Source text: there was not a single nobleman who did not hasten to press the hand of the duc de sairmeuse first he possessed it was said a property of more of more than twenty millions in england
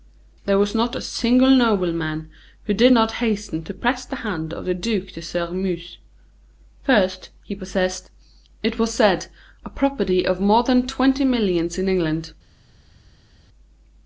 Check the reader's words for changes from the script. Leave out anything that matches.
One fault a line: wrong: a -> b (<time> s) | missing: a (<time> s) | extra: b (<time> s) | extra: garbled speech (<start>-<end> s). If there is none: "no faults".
missing: of more (10.6 s)